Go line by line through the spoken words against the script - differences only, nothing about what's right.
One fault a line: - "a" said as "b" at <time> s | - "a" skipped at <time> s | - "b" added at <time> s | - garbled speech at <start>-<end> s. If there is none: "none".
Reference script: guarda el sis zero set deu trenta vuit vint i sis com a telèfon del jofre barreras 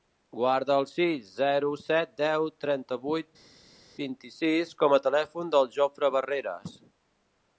none